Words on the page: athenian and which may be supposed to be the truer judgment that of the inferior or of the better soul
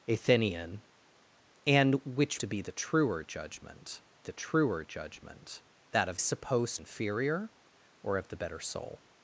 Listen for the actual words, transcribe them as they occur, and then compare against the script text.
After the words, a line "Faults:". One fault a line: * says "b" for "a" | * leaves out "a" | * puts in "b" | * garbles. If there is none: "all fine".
athenian and which to be the truer judgment the truer judgment that of supposed inferior or of the better soul
Faults:
* says "to" for "may"
* says "the truer judgment" for "supposed to be"
* says "supposed" for "the"